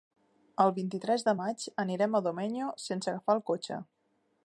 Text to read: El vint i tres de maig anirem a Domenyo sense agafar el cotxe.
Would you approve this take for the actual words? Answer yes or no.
yes